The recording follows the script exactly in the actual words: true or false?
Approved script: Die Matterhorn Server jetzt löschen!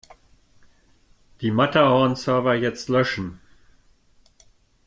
true